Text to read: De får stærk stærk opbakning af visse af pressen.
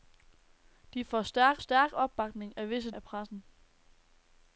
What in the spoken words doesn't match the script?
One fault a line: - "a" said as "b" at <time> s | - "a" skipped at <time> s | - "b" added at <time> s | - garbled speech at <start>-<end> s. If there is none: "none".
none